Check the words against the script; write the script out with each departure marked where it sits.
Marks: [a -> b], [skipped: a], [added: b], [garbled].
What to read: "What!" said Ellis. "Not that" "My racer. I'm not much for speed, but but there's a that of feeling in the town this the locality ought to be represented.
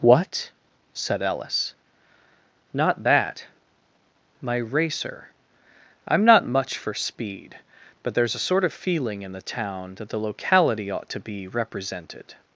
"What!" said Ellis. "Not that" "My racer. I'm not much for speed, but [skipped: but] there's a [that -> sort] of feeling in the town [this -> that] the locality ought to be represented.